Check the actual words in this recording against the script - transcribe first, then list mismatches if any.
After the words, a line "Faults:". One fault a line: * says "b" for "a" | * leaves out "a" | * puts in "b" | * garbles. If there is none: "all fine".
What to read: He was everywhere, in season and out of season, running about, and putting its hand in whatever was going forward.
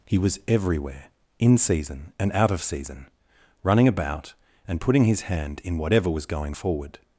He was everywhere, in season and out of season, running about, and putting his hand in whatever was going forward.
Faults:
* says "his" for "its"